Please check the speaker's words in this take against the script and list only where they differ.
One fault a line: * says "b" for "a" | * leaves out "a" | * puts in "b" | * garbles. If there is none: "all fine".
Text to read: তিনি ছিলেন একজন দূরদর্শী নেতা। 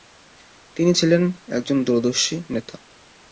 all fine